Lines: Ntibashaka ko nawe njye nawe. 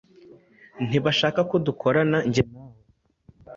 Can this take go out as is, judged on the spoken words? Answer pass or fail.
fail